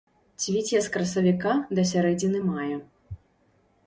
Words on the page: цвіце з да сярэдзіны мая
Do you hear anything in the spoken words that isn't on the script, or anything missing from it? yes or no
yes